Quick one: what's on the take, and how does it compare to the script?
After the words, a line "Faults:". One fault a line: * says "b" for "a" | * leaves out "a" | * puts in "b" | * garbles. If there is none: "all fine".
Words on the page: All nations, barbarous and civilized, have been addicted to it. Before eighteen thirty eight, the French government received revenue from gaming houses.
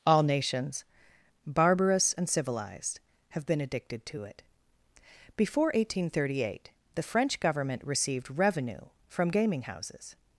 All nations, barbarous and civilized, have been addicted to it. Before eighteen thirty eight, the French government received revenue from gaming houses.
Faults:
all fine